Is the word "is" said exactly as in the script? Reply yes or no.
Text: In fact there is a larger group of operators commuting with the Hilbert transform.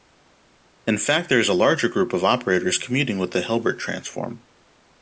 yes